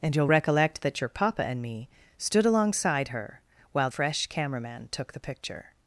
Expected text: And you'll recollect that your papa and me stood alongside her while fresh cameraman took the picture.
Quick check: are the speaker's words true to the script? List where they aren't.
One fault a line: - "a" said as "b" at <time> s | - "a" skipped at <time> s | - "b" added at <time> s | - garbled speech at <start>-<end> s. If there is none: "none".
none